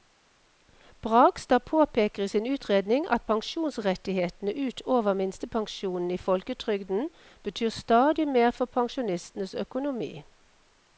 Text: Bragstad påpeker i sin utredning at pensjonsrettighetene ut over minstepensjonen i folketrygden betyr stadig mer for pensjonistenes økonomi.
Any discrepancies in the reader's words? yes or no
no